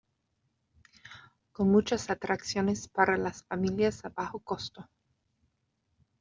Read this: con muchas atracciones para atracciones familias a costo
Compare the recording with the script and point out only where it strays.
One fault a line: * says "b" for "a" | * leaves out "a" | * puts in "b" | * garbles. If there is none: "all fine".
* says "las" for "atracciones"
* puts in "bajo"